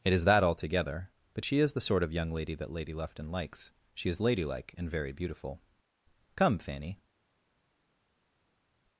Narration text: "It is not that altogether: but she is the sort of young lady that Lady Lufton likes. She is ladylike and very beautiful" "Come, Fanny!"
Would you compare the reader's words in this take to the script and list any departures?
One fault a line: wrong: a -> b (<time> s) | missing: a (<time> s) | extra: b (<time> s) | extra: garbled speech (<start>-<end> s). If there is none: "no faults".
missing: not (0.2 s)